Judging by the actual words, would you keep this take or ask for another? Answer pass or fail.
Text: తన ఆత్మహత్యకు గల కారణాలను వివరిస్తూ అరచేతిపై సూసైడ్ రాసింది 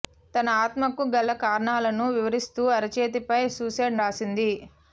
pass